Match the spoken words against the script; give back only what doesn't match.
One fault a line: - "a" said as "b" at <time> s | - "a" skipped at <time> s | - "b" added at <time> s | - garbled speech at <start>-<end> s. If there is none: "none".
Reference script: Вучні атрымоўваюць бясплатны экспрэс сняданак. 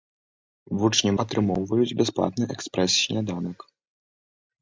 none